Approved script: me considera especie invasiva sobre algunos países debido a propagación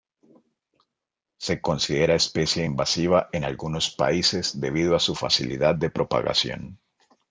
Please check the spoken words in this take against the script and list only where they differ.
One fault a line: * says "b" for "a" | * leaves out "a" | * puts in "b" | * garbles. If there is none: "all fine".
* says "se" for "me"
* says "en" for "sobre"
* puts in "su facilidad de"